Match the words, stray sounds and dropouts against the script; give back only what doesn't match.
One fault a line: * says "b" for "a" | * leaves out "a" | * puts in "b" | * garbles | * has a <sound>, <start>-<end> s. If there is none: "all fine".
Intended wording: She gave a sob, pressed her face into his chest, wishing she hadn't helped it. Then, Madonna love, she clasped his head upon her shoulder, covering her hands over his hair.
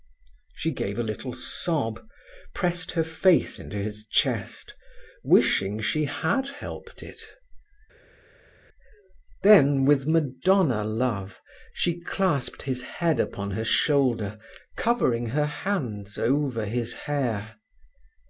* puts in "little"
* says "had" for "hadn't"
* puts in "with"